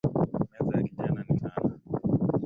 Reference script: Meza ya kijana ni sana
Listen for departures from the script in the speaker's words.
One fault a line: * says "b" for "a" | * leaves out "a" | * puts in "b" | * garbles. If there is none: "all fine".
all fine